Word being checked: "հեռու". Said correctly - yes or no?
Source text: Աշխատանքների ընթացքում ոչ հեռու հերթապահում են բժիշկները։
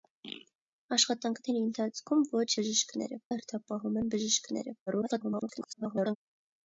no